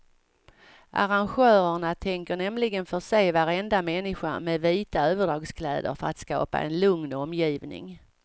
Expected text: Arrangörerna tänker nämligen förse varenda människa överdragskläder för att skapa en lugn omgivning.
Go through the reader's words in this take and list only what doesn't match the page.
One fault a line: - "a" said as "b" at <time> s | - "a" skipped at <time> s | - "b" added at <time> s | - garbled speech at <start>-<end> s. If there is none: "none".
- "med vita" added at 4.4 s